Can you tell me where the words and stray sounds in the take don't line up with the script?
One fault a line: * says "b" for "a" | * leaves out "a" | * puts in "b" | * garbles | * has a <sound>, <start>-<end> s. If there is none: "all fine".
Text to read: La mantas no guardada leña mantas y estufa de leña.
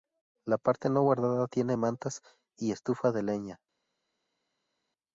* says "parte" for "mantas"
* says "tiene" for "leña"